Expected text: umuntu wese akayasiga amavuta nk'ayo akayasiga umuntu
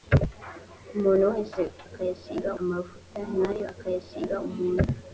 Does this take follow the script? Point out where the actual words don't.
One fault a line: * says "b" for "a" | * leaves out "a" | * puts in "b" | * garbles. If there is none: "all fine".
all fine